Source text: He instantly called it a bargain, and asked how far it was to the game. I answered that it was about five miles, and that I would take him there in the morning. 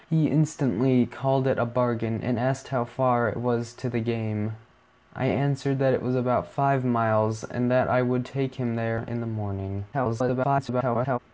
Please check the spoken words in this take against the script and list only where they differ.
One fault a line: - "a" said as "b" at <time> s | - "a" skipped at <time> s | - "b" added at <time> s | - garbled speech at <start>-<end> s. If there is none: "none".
- garbled speech at 9.9-11.2 s